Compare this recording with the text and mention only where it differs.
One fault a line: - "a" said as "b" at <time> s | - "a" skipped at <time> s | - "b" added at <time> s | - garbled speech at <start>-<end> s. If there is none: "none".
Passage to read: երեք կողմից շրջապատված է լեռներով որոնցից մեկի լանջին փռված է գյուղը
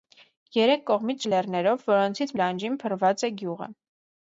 - "շրջապատված" skipped at 1.3 s
- "մեկի" skipped at 2.3 s